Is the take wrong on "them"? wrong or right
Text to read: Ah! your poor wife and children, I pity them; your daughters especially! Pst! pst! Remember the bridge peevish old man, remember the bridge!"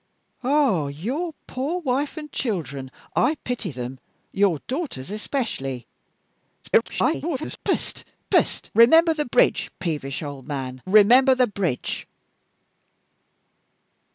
right